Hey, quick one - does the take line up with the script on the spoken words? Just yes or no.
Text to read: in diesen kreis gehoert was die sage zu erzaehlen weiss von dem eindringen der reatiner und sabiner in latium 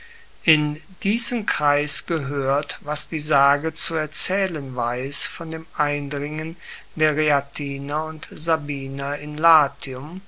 yes